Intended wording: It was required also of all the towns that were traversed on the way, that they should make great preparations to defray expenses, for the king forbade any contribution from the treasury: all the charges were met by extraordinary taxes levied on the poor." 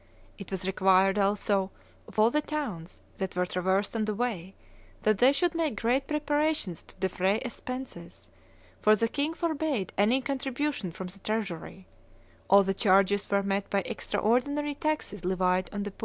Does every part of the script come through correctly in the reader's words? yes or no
yes